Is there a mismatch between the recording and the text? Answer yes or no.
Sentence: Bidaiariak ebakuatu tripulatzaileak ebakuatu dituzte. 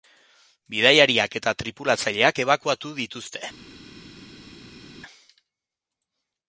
yes